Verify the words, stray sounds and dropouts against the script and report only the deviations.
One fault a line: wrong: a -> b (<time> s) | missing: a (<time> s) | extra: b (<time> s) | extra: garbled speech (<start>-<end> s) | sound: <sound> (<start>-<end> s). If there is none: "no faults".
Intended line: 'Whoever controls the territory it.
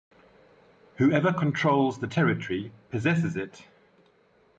extra: possesses (2.9 s)